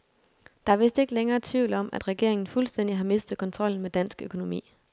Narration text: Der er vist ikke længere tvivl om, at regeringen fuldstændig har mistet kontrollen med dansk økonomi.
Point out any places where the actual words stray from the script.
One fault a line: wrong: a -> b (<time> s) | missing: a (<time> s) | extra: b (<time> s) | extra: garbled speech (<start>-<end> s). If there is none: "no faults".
no faults